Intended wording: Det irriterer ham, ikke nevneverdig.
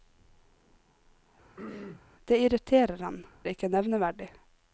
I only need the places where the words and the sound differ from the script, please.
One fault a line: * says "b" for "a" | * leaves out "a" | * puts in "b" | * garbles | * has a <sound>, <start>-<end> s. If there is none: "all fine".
* has a throat clearing, 1.6-2.0 s